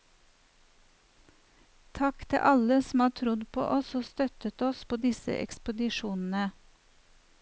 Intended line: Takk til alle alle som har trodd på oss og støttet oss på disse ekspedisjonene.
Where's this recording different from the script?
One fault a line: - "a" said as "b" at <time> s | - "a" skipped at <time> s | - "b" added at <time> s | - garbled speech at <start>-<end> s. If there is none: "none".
- "alle" skipped at 2.8 s